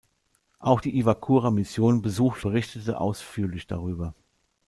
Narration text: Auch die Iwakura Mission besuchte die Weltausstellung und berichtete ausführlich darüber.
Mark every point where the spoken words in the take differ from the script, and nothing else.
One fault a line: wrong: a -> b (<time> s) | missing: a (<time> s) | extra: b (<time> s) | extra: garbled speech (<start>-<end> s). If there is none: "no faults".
missing: die Weltausstellung und (2.5 s)